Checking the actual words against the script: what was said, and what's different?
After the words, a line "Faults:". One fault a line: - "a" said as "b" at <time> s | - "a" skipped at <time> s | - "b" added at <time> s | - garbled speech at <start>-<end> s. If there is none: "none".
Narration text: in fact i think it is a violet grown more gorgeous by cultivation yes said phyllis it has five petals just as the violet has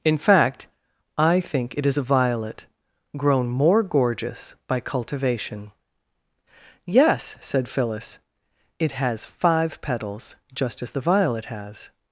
in fact i think it is a violet grown more gorgeous by cultivation yes said phyllis it has five petals just as the violet has
Faults:
none